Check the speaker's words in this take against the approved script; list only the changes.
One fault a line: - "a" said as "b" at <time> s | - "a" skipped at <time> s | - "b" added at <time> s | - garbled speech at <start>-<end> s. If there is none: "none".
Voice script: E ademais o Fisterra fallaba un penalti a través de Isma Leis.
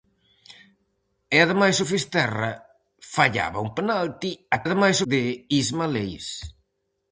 - "través" said as "ademais" at 4.7 s